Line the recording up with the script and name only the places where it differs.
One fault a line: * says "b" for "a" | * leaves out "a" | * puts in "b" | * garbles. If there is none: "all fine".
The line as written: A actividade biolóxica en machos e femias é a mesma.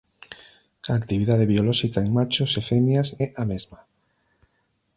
all fine